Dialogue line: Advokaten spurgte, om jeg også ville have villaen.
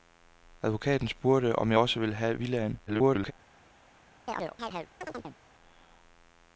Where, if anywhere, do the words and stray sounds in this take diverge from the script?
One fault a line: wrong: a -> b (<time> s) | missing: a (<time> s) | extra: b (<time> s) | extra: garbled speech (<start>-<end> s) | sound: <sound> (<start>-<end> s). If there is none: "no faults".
extra: garbled speech (2.9-3.3 s)
sound: chirp (4.3-5.4 s)